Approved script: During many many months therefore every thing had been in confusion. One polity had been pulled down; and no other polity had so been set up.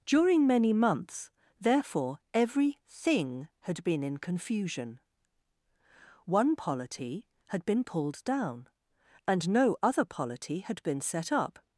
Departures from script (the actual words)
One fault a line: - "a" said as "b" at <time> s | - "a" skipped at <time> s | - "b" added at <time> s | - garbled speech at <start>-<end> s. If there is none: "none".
- "many" skipped at 0.7 s
- "so" skipped at 10.8 s